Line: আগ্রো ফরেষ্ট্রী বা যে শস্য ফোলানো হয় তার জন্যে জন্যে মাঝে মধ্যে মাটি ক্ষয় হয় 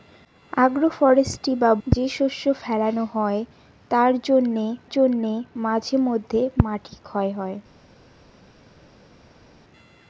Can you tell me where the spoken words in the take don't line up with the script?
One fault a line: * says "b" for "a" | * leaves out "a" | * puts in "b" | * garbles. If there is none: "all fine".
all fine